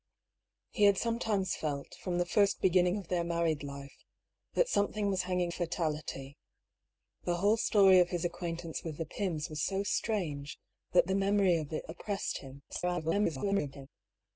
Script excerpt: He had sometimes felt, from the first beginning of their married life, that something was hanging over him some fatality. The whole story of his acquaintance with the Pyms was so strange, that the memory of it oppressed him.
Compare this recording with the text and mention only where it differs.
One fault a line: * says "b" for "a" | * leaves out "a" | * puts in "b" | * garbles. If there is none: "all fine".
* leaves out "over him some"
* garbles